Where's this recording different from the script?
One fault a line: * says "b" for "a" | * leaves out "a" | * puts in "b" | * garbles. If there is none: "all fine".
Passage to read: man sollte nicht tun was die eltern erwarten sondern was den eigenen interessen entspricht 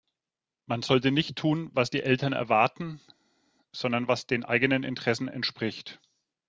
all fine